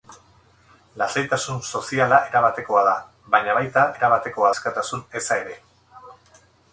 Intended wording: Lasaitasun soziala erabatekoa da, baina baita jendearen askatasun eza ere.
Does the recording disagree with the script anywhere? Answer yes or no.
yes